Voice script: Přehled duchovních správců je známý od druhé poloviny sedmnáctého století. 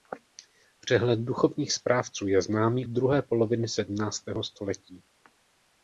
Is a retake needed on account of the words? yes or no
yes